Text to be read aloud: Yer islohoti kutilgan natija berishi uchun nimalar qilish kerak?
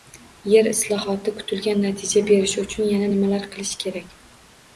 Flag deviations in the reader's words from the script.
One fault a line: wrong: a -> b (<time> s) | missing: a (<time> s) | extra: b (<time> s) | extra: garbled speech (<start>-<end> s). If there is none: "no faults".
extra: yana (3.0 s)